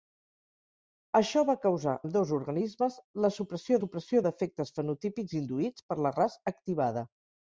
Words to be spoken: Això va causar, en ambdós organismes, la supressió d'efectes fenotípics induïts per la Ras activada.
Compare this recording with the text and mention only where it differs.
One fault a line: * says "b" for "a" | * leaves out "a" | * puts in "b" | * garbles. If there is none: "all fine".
* leaves out "en"
* puts in "supressió"